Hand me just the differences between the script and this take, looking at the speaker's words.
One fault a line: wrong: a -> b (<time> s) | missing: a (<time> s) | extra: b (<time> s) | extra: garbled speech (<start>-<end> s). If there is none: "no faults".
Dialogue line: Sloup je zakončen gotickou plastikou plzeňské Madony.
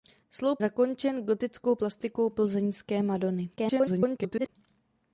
missing: je (0.6 s)
extra: garbled speech (3.6-4.5 s)